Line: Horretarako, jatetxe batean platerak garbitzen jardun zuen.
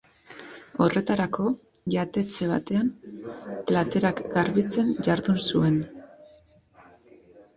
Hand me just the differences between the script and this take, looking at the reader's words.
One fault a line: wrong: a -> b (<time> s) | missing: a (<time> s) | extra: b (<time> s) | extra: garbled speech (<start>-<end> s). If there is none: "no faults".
no faults